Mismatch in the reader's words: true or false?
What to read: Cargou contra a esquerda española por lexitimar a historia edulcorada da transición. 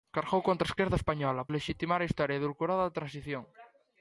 true